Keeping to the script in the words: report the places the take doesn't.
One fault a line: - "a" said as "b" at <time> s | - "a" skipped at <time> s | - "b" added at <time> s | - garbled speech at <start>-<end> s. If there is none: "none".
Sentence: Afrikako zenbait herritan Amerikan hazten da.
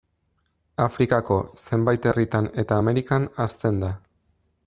- "eta" added at 2.6 s